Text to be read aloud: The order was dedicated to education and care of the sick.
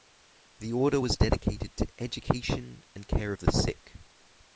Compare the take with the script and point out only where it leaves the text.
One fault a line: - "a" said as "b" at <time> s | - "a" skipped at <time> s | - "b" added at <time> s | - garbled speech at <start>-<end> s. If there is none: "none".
none